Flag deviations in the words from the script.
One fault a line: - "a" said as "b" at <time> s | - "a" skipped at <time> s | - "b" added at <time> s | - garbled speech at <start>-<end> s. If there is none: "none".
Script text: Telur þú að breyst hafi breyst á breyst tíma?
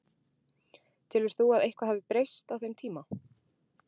- "breyst" said as "eitthvað" at 1.7 s
- "breyst" said as "þeim" at 2.6 s